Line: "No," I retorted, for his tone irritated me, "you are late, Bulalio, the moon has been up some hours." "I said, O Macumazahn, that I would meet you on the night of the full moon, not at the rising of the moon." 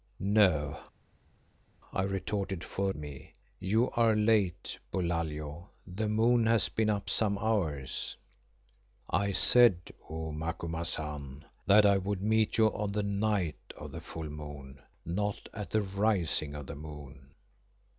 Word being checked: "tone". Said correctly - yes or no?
no